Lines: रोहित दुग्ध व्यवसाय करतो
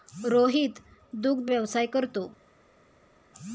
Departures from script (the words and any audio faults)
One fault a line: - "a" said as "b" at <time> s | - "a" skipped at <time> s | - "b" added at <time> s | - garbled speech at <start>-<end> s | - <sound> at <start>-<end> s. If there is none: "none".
none